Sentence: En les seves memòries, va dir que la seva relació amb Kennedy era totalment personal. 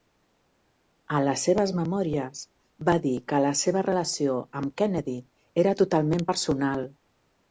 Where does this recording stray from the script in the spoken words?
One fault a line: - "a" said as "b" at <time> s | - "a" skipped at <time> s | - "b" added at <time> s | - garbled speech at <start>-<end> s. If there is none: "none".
none